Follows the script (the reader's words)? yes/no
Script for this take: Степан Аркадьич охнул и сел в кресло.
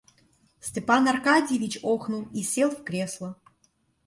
yes